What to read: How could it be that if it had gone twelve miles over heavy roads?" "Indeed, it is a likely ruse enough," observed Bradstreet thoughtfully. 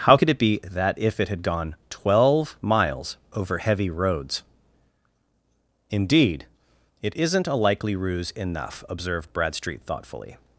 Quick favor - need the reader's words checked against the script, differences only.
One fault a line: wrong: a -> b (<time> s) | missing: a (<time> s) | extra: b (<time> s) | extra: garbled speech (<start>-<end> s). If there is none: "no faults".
wrong: is -> isn't (7.1 s)